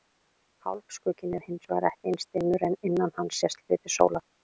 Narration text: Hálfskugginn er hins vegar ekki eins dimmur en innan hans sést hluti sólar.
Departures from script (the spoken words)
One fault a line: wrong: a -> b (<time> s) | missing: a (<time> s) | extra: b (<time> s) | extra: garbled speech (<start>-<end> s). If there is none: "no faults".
no faults